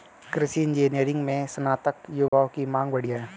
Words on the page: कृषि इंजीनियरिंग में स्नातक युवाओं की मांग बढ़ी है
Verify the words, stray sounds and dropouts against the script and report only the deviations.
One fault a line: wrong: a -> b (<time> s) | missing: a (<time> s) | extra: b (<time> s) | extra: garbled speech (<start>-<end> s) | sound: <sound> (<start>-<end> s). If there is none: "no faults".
sound: dropout (2.3-2.3 s)